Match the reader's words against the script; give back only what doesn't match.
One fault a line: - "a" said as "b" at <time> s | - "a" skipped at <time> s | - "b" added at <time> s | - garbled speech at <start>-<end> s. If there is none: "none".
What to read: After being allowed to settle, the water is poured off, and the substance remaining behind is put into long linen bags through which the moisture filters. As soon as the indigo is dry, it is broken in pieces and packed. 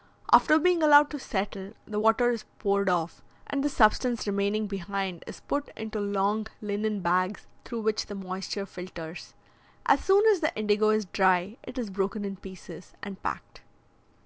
none